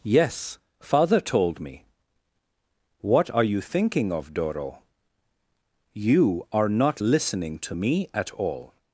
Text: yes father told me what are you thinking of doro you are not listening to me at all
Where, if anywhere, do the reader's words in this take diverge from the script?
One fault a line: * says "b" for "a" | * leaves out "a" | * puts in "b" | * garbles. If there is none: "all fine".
all fine